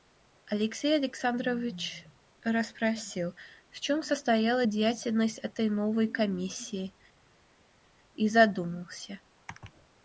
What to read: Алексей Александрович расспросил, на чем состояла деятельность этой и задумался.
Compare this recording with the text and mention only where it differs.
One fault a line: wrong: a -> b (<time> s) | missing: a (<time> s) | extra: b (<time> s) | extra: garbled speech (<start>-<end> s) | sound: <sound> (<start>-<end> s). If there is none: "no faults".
wrong: на -> в (3.7 s)
extra: новой комиссии (5.7 s)